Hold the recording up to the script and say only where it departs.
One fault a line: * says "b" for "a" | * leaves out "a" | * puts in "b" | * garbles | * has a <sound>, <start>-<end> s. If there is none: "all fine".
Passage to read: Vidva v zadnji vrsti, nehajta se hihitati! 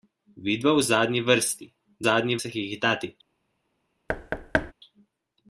* says "zadnji" for "nehajta"
* has a thud, 4.1-4.7 s